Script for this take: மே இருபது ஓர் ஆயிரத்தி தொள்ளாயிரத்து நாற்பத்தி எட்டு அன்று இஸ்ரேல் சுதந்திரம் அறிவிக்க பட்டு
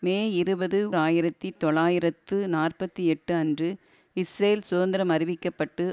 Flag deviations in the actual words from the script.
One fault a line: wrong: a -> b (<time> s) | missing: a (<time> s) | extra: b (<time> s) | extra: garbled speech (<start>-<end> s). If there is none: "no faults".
missing: ஓர் (0.8 s)